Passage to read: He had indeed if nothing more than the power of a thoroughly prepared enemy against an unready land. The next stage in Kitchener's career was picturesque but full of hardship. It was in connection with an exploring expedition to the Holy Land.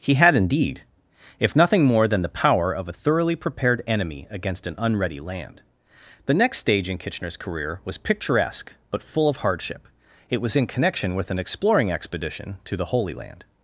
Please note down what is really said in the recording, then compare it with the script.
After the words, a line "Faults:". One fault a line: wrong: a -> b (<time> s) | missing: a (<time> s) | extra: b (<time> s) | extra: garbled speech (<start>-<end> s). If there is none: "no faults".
He had indeed if nothing more than the power of a thoroughly prepared enemy against an unready land. The next stage in Kitchener's career was picturesque but full of hardship. It was in connection with an exploring expedition to the Holy Land.
Faults:
no faults